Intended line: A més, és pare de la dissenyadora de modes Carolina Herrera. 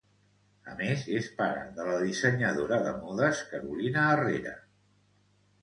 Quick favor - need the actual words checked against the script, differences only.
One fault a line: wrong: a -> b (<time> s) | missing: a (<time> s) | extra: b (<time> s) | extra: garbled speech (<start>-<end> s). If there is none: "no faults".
no faults